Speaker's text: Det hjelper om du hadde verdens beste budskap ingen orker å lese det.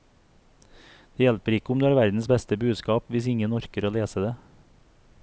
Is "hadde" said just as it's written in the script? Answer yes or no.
no